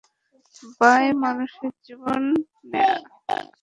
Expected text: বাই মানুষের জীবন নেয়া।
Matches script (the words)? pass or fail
pass